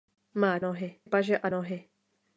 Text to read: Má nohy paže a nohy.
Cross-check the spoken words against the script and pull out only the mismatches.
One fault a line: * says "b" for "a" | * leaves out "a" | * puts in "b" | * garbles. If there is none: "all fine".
all fine